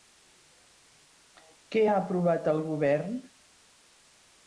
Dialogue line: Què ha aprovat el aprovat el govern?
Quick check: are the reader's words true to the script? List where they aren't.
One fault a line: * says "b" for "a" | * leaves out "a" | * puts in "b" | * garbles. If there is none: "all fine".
* leaves out "aprovat el"